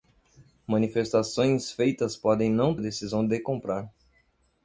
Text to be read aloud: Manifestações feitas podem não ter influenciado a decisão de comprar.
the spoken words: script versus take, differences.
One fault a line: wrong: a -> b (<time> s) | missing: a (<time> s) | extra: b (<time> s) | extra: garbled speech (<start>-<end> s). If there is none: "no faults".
missing: ter influenciado (2.8 s)